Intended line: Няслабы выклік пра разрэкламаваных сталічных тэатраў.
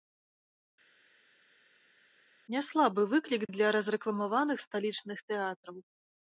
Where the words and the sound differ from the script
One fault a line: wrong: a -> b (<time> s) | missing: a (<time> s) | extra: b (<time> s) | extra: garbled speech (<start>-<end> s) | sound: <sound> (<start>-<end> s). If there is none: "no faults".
wrong: пра -> для (3.6 s)